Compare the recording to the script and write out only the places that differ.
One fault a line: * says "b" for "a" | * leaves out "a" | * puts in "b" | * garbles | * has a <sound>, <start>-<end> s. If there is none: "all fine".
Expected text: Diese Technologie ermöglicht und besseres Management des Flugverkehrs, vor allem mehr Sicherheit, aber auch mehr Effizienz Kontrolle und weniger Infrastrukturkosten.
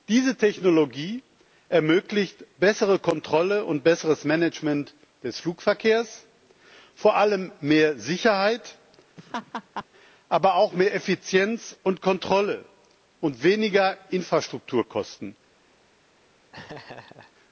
* puts in "bessere Kontrolle"
* has a laugh, 9.2-9.9 s
* puts in "und"
* has a laugh, 16.5-17.3 s